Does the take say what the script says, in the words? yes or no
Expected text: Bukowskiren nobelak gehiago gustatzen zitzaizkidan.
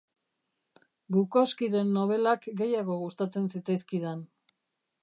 yes